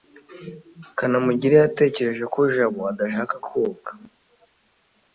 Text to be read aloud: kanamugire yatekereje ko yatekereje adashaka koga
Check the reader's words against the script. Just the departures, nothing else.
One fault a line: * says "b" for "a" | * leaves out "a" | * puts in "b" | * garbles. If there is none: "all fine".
* says "jabo" for "yatekereje"